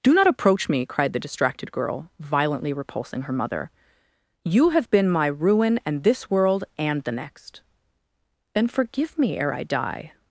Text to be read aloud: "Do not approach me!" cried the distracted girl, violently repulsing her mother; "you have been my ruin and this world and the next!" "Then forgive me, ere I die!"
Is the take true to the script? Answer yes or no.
yes